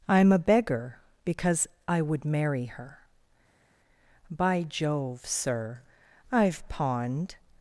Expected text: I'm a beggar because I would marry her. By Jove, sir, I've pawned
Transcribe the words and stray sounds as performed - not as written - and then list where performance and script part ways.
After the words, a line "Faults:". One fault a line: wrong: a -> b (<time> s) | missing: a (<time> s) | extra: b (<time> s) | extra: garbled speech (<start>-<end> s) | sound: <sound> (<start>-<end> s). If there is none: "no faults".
I'm a beggar because I would marry her. By Jove, sir, I've pawned
Faults:
no faults